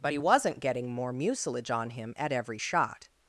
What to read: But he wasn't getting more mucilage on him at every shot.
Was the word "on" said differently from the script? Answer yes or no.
no